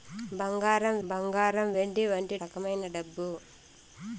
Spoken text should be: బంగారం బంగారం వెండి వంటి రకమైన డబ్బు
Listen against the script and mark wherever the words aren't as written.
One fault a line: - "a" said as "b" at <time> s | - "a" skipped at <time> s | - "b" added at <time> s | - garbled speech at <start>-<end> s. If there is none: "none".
none